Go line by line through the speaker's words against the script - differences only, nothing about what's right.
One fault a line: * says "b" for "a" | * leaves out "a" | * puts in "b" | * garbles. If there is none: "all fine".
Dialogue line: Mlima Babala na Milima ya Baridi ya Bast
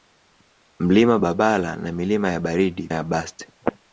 all fine